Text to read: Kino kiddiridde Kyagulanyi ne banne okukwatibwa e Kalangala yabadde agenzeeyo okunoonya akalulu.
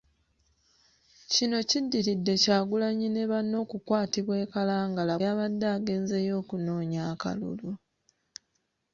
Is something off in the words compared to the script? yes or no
no